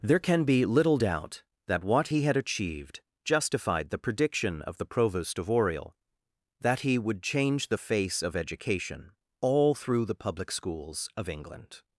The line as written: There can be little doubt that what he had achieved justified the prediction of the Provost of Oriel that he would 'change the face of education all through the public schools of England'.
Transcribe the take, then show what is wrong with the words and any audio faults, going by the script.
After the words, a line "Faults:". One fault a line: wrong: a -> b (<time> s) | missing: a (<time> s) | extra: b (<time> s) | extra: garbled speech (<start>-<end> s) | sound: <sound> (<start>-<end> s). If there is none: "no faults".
There can be little doubt that what he had achieved justified the prediction of the Provost of Oriel that he would 'change the face of education all through the public schools of England'.
Faults:
no faults